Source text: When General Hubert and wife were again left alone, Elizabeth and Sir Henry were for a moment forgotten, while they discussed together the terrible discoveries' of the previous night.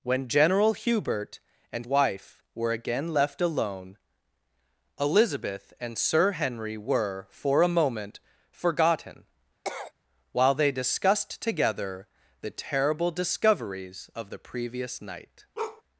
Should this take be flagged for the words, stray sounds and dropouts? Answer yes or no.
yes